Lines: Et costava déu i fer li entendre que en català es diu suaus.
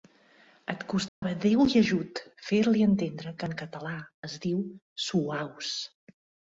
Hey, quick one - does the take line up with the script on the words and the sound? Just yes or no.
no